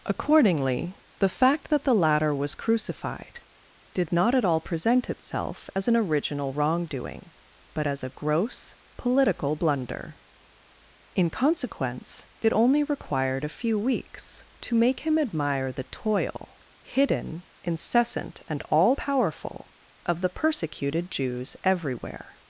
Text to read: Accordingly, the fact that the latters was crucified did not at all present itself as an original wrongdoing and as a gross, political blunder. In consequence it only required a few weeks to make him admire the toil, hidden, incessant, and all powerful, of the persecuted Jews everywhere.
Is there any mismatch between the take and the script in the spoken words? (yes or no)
yes